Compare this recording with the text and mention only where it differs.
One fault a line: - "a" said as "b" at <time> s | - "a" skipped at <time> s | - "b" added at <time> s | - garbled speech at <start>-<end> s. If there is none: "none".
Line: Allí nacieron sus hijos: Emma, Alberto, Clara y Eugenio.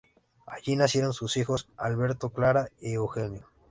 - "Emma" skipped at 1.7 s